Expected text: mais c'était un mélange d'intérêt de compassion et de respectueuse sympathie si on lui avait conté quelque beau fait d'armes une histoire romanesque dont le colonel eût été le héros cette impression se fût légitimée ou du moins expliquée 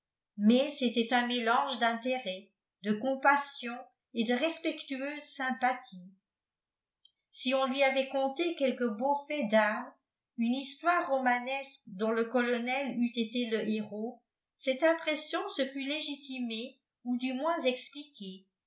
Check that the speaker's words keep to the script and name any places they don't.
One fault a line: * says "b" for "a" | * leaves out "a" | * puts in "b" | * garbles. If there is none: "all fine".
all fine